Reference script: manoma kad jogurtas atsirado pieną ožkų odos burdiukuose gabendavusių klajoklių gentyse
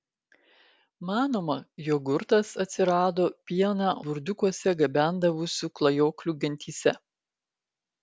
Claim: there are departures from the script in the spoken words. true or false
true